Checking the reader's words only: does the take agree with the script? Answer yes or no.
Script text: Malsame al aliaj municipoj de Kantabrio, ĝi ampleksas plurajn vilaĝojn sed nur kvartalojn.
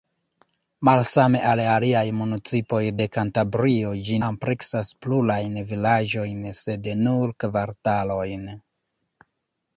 yes